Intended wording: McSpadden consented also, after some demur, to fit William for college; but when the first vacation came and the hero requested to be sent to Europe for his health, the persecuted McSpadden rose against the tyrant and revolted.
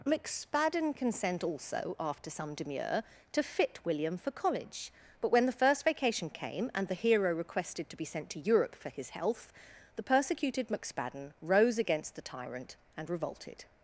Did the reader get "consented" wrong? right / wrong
wrong